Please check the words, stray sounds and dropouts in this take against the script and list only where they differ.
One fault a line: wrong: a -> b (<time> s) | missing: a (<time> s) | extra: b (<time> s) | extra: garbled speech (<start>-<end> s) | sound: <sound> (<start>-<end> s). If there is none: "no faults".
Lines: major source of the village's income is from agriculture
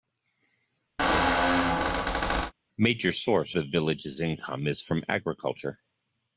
sound: squeak (1.0-2.5 s)
missing: of (3.6 s)